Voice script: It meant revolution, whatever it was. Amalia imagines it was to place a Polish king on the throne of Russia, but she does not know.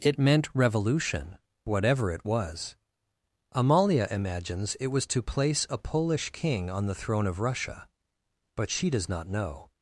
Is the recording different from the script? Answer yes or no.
no